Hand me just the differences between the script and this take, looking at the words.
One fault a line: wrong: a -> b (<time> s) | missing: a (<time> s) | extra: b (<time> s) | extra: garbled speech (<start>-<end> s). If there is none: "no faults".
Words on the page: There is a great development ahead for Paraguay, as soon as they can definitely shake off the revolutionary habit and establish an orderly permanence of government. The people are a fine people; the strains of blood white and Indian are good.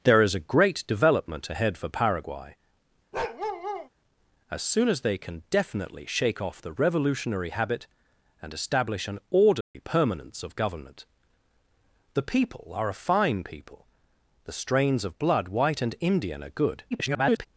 extra: garbled speech (16.9-17.5 s)